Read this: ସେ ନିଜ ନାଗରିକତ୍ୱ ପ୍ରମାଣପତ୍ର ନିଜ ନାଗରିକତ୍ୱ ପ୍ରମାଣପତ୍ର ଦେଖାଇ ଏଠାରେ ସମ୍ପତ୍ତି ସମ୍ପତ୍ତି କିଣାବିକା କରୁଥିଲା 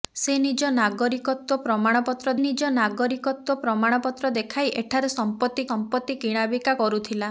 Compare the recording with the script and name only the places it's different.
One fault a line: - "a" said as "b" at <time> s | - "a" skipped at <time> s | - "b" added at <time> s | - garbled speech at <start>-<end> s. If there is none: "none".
none